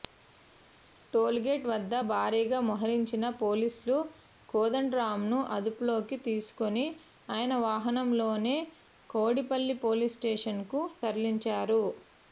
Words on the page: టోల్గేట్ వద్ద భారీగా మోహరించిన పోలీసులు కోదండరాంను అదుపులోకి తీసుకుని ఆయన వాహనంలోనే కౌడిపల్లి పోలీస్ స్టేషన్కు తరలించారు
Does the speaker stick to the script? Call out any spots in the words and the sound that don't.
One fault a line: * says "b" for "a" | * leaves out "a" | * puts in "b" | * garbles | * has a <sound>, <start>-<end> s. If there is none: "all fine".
all fine